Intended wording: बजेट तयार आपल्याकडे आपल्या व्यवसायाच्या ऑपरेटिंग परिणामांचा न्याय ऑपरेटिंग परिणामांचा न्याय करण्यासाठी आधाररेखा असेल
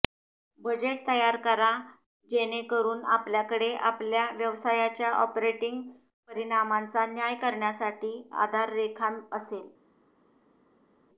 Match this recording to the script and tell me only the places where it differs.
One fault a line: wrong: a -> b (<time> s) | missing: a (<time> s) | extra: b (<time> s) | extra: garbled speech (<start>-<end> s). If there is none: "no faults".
extra: करा जेणेकरून (1.4 s)
missing: ऑपरेटिंग परिणामांचा न्याय (7.3 s)